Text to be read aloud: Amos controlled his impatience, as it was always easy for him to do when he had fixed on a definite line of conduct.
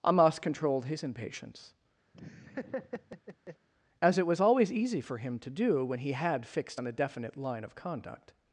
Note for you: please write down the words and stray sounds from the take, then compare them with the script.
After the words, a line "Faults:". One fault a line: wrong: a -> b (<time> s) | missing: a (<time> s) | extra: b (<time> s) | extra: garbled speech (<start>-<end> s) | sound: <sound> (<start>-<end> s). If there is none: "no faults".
Amos controlled his impatience, as it was always easy for him to do when he had fixed on a definite line of conduct.
Faults:
sound: laugh (2.1-3.7 s)